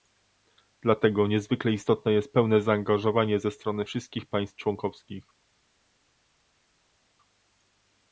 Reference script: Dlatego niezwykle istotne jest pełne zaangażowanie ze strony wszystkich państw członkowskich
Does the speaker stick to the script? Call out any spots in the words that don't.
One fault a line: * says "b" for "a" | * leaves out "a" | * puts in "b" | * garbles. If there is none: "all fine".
all fine